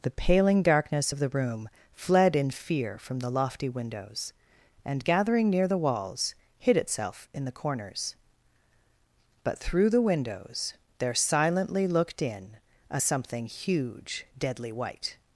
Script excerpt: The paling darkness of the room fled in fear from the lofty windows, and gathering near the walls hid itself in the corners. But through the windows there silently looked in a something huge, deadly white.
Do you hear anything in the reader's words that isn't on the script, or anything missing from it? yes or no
no